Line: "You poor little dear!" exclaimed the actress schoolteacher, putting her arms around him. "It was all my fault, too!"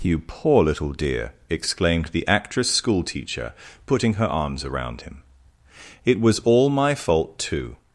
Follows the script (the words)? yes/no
yes